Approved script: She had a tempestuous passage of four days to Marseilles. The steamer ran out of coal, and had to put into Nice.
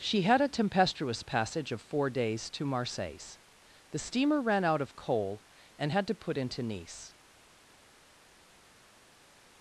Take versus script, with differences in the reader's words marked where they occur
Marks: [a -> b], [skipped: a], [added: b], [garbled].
She had a tempestuous passage of four days to Marseilles. The steamer ran out of coal, and had to put into Nice.